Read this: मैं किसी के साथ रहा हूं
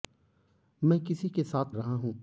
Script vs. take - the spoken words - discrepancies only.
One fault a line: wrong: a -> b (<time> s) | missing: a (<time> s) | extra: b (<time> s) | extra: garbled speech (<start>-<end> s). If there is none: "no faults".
no faults